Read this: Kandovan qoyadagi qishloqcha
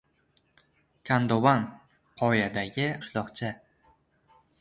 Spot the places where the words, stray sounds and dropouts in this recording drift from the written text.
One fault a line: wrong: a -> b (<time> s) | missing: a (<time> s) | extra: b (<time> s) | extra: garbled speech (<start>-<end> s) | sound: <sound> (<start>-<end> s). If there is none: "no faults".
no faults